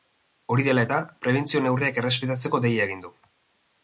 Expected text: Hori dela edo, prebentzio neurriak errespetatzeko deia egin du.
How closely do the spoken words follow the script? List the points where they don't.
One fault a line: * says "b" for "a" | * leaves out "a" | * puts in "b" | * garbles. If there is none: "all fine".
* says "eta" for "edo"